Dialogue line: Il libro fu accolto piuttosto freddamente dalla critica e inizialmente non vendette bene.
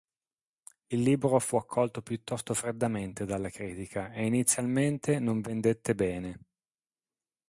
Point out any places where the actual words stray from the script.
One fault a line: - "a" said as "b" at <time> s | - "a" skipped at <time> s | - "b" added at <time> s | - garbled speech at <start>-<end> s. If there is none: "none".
none